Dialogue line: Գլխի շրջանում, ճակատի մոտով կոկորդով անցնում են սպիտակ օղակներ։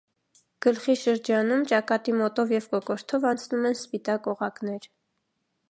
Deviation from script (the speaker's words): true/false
true